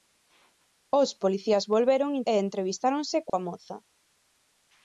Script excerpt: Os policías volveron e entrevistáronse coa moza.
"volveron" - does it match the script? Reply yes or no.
yes